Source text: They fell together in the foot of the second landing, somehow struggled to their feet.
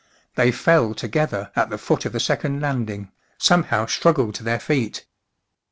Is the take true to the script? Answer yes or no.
no